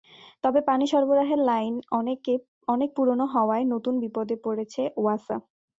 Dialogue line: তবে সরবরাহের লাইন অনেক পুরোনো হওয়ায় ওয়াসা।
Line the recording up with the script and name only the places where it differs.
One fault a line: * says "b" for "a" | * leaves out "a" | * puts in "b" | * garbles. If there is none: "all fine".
* puts in "পানি"
* puts in "নতুন বিপদে পড়েছে"